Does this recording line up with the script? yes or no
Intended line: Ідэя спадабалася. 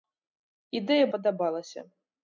yes